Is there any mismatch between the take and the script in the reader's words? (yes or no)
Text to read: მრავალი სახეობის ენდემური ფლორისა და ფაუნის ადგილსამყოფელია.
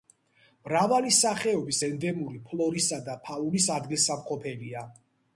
no